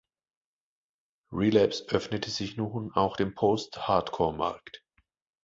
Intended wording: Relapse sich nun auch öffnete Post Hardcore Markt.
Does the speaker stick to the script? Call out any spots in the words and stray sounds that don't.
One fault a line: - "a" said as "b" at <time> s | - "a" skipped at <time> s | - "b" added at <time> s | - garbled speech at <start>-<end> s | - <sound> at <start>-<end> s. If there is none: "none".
- "öffnete" added at 1.9 s
- "öffnete" said as "dem" at 3.1 s